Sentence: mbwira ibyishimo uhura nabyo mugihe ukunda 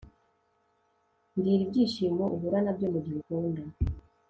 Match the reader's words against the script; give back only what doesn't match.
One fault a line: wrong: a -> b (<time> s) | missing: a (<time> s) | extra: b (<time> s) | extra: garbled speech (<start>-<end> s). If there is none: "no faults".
no faults